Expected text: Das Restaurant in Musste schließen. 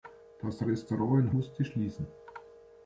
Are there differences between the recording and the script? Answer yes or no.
no